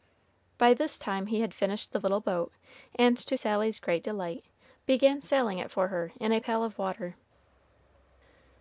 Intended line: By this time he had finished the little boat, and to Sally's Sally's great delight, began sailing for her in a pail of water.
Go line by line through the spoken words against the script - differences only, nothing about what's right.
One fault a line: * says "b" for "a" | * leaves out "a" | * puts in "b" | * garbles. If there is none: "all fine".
* leaves out "Sally's"
* puts in "it"